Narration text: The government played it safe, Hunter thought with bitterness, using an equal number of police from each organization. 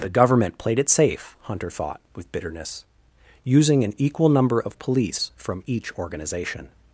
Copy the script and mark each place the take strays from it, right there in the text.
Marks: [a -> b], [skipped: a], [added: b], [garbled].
The government played it safe, Hunter thought with bitterness, using an equal number of police from each organization.